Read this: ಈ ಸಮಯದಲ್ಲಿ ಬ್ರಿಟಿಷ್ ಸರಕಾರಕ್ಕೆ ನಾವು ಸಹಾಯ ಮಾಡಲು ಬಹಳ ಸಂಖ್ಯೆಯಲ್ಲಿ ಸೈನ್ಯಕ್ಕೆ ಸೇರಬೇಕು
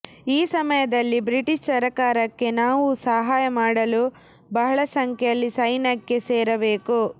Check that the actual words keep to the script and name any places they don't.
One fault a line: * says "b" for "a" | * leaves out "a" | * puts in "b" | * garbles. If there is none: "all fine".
all fine